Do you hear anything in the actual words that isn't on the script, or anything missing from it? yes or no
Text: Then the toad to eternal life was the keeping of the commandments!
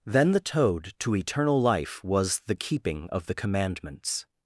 no